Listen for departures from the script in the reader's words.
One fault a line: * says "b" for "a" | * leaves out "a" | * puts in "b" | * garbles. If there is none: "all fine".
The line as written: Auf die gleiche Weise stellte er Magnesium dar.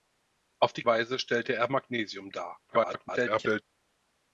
* leaves out "gleiche"
* garbles